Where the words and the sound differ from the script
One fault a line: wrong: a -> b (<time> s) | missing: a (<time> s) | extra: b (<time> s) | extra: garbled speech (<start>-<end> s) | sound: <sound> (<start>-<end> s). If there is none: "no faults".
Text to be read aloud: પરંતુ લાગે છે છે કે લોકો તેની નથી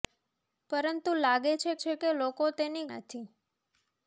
no faults